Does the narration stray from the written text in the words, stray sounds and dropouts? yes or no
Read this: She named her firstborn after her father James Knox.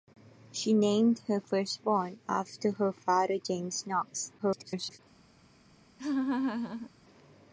yes